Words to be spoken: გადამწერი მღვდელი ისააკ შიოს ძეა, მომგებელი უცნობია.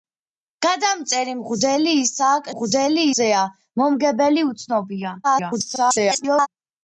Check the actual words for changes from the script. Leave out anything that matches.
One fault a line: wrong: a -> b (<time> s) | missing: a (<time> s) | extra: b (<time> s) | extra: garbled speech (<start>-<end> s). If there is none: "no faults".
wrong: შიოს -> მღვდელი (2.5 s)
extra: garbled speech (5.2-6.5 s)